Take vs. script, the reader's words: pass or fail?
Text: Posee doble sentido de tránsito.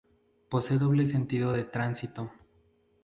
pass